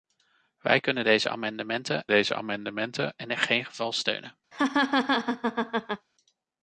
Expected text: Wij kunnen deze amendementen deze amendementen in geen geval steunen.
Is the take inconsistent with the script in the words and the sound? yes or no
yes